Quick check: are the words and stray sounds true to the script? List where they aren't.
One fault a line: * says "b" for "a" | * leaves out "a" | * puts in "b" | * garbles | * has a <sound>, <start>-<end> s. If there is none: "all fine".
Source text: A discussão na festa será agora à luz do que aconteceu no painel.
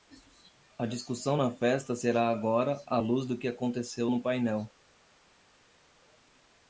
all fine